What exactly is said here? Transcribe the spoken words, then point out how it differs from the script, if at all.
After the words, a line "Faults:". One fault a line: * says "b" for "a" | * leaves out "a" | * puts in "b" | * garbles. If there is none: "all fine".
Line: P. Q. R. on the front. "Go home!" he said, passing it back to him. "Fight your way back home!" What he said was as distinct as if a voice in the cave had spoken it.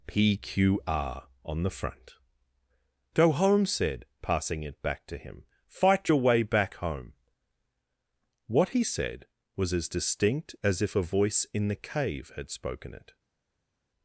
P. Q. R. on the front. "Go home!" said, passing it back to him. "Fight your way back home!" What he said was as distinct as if a voice in the cave had spoken it.
Faults:
* leaves out "he"